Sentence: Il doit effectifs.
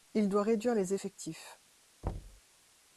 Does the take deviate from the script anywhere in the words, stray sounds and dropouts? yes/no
yes